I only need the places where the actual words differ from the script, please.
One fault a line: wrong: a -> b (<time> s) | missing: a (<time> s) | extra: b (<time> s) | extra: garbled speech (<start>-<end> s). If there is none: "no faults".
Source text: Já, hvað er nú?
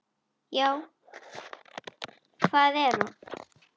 no faults